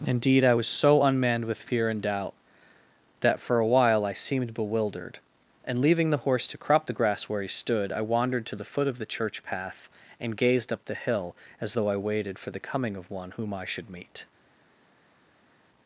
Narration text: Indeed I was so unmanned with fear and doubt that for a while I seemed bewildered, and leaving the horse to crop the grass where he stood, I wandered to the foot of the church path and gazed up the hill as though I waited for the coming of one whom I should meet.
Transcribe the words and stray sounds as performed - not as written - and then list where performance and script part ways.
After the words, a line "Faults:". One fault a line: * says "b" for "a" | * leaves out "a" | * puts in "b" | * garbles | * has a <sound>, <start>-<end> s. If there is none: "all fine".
Indeed I was so unmanned with fear and doubt that for a while I seemed bewildered, and leaving the horse to crop the grass where he stood, I wandered to the foot of the church path and gazed up the hill as though I waited for the coming of one whom I should meet.
Faults:
all fine